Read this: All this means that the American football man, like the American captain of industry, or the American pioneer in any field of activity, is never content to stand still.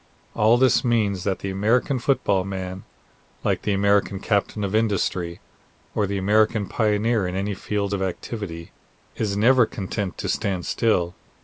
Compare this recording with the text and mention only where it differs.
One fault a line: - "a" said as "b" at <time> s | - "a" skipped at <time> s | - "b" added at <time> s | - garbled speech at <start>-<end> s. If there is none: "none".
none